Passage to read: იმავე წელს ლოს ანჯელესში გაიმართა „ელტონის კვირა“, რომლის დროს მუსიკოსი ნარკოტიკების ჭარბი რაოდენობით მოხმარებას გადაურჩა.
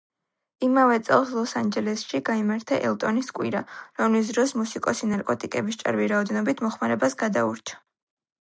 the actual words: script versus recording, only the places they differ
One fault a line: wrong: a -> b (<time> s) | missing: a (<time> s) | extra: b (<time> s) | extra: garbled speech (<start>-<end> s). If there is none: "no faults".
no faults